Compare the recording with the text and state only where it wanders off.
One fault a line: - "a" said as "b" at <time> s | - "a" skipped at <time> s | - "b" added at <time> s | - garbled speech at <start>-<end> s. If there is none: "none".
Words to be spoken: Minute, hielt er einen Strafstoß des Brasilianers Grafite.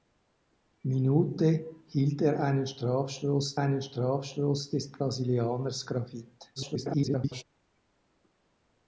- "einen Strafstoß" added at 3.6 s
- garbled speech at 6.6-7.4 s